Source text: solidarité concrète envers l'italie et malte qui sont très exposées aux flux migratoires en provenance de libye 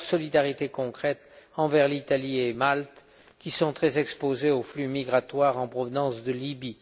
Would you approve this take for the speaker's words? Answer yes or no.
yes